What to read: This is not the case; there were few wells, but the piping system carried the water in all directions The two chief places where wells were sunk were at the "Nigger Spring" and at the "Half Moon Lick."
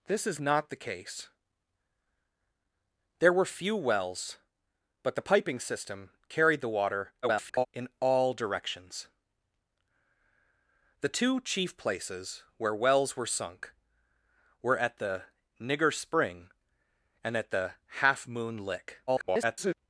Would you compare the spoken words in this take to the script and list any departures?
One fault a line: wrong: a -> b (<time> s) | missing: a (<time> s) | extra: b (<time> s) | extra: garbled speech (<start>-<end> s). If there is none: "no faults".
extra: garbled speech (7.2-7.7 s)
extra: garbled speech (19.1-19.7 s)